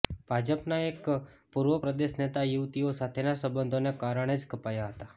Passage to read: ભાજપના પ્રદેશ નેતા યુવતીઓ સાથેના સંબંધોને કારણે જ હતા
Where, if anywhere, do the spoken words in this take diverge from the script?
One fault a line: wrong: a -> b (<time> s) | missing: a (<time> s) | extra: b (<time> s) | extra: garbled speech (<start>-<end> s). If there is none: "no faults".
extra: એક પૂર્વ (0.8 s)
extra: કપાયા (4.5 s)